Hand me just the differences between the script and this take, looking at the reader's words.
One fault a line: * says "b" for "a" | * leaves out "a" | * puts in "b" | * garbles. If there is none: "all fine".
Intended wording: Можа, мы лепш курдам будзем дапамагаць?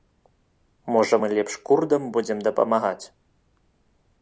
all fine